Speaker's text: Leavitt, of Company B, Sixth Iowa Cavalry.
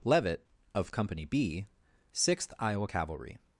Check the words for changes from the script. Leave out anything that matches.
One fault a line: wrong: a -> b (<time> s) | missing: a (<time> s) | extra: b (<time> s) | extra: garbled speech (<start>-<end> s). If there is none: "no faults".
no faults